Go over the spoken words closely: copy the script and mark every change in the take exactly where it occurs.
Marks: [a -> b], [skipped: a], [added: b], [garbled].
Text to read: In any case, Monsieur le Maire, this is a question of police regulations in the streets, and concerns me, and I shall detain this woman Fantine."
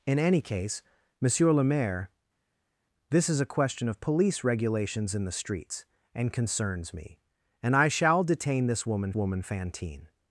In any case, Monsieur le Maire, this is a question of police regulations in the streets, and concerns me, and I shall detain this woman [added: woman] Fantine."